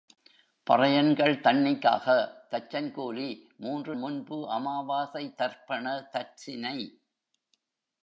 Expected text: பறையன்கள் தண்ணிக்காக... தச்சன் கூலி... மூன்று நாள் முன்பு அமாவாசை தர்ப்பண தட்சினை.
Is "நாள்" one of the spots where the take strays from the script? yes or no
yes